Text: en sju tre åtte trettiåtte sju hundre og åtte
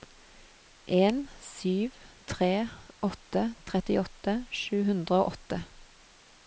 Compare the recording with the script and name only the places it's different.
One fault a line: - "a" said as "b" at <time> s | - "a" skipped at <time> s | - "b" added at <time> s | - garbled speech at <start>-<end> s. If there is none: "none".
none